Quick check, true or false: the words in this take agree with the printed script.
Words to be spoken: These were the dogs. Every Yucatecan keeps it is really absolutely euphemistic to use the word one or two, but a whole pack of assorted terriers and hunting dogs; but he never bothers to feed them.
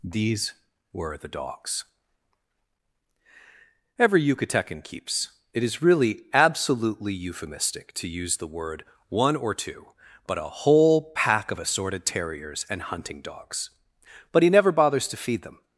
true